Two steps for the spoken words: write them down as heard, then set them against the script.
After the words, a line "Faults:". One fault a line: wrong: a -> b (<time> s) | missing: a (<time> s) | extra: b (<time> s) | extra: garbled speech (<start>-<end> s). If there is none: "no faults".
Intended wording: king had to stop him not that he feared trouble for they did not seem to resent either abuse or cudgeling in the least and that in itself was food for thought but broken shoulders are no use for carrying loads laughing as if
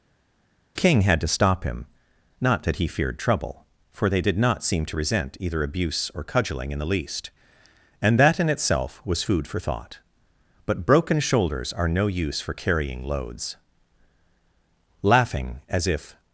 king had to stop him not that he feared trouble for they did not seem to resent either abuse or cudgeling in the least and that in itself was food for thought but broken shoulders are no use for carrying loads laughing as if
Faults:
no faults